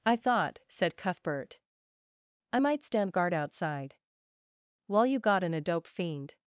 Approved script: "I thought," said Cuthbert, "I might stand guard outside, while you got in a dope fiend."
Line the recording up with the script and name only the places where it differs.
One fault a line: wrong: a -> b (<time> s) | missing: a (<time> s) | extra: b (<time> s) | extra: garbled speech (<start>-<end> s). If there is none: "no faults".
no faults